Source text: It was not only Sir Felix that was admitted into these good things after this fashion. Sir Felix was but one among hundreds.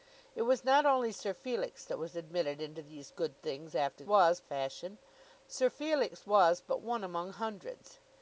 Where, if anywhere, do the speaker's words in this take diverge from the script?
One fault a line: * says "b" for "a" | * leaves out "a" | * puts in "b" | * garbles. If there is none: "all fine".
* says "was" for "this"